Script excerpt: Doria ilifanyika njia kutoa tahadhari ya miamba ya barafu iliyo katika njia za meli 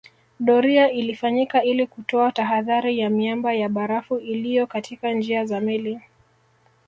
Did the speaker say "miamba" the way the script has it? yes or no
yes